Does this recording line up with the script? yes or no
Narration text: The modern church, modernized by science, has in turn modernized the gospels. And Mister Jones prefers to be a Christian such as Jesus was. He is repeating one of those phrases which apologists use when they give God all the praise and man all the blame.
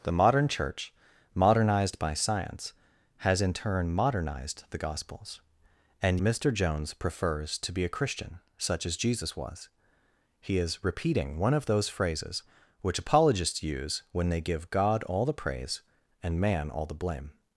yes